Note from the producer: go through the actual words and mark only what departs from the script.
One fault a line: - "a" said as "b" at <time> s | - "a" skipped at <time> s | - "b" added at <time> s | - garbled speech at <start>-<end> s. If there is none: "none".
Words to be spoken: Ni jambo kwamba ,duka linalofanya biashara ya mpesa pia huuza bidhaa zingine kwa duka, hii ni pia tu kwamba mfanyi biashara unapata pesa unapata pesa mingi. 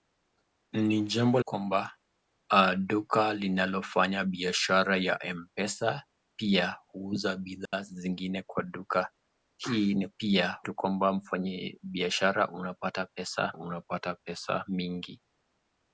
none